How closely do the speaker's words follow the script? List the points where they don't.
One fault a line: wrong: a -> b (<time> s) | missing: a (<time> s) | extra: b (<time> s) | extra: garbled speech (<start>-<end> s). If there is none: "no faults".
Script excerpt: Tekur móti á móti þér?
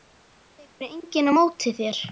wrong: móti -> enginn (0.9 s)